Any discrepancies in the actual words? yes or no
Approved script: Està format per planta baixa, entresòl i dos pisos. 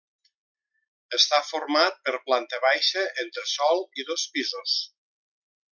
no